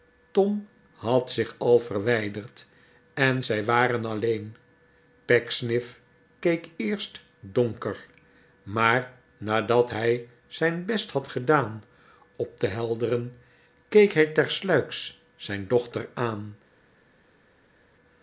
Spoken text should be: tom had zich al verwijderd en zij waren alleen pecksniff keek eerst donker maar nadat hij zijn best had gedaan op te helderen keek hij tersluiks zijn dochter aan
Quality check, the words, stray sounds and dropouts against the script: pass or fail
pass